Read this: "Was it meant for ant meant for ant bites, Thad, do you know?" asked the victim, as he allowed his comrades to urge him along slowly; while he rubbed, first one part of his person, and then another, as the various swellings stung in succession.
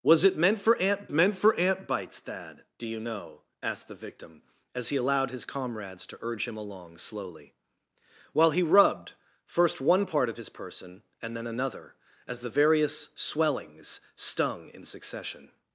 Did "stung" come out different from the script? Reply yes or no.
no